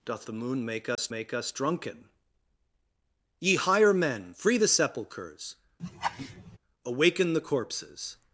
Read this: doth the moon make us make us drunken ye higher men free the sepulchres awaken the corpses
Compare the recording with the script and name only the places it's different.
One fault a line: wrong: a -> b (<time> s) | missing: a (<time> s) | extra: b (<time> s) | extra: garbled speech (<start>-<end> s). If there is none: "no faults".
no faults